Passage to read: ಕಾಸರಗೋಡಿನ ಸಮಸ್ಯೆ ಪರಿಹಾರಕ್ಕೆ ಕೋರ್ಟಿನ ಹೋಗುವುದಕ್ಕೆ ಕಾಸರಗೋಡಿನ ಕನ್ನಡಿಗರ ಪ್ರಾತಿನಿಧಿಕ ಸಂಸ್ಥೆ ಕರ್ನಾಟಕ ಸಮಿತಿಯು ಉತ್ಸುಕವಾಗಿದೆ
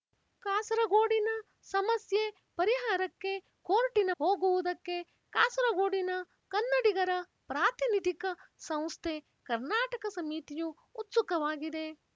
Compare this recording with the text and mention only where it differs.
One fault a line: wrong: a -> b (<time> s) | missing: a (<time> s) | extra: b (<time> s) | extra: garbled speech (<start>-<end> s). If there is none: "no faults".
no faults